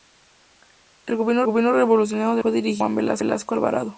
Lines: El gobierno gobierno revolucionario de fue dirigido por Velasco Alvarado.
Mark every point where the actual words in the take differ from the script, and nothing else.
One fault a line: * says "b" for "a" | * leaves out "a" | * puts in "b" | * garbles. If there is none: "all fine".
all fine